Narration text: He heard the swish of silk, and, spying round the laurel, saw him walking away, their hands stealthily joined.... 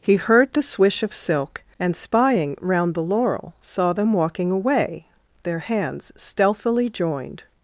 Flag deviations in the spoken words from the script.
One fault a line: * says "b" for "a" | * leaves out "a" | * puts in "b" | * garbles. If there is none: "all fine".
* says "them" for "him"